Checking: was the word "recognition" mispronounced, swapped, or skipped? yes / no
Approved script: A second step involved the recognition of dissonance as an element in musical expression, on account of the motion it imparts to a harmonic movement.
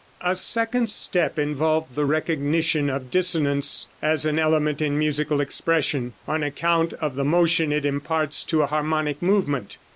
no